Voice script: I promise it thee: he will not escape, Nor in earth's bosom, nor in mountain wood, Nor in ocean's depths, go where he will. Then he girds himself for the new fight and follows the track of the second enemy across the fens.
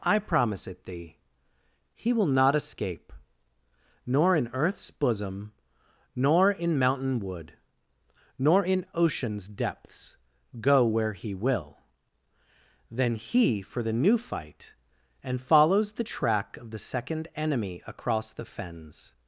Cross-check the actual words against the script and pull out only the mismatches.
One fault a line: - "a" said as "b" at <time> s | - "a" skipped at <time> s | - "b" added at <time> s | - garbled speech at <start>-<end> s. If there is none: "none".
- "girds himself" skipped at 13.6 s